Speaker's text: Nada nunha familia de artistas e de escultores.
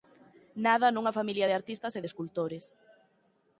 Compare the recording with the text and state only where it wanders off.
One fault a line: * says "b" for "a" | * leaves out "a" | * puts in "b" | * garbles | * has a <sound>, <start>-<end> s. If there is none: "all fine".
all fine